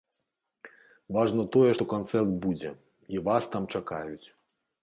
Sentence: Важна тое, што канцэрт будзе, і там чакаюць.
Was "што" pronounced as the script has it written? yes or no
yes